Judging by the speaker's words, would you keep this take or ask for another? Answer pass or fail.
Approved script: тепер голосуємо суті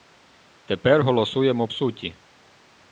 pass